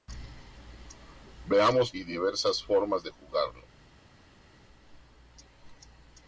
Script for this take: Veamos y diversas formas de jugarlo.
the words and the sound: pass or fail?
pass